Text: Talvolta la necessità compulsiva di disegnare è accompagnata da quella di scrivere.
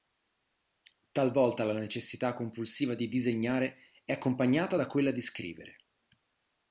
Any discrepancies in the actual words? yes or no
no